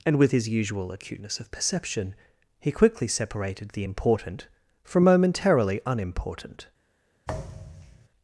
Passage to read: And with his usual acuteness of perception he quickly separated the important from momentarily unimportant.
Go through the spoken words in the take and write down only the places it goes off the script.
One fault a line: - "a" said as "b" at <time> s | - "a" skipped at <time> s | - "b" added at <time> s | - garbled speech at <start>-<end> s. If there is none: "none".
none